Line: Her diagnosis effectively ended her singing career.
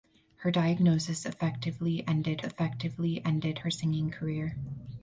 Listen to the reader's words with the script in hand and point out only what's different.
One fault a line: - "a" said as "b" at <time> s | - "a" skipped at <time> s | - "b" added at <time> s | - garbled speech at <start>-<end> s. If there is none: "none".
- "effectively ended" added at 2.4 s